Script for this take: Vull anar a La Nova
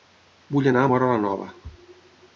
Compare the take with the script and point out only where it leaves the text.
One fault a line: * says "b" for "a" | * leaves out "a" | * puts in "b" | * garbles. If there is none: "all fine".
* puts in "Móra"